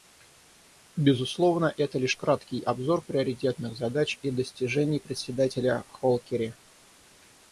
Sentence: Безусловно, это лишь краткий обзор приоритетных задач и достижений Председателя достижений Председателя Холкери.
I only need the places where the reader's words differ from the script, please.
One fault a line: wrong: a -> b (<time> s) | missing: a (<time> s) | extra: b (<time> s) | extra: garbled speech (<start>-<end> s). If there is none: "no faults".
missing: достижений Председателя (5.8 s)